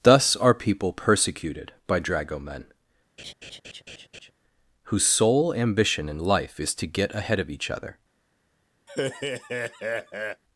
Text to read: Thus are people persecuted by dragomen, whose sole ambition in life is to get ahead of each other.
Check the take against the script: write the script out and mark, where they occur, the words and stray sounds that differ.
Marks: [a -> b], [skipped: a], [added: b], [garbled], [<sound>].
Thus are people persecuted by dragomen, [laugh] whose sole ambition in life is to get ahead of each other. [laugh]